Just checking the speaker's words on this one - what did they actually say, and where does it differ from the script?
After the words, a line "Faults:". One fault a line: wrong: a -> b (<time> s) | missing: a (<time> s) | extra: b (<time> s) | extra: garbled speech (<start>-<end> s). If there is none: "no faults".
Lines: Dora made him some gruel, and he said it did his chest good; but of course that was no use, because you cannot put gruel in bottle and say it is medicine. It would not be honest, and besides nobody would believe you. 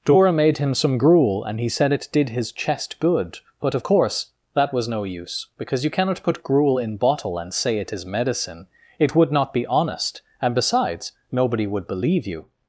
Dora made him some gruel, and he said it did his chest good; but of course that was no use, because you cannot put gruel in bottle and say it is medicine. It would not be honest, and besides nobody would believe you.
Faults:
no faults